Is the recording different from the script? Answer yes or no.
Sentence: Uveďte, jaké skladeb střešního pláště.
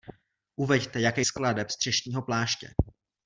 no